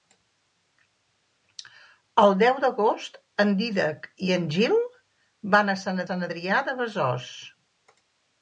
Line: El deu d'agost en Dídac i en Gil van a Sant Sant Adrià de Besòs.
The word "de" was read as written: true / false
true